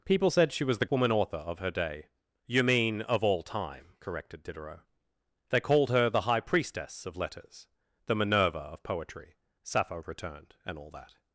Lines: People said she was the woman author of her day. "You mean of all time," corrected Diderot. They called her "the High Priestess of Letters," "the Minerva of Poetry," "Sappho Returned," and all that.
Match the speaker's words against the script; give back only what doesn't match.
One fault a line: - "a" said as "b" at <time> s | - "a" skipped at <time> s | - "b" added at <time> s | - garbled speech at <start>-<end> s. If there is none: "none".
none